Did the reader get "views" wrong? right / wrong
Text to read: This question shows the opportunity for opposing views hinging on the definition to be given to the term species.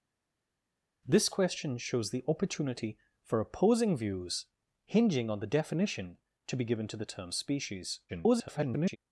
right